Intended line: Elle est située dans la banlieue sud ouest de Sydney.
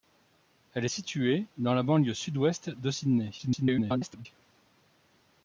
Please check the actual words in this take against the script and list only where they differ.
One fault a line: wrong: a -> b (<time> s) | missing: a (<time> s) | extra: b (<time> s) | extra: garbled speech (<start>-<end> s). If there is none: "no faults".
extra: garbled speech (3.4-4.3 s)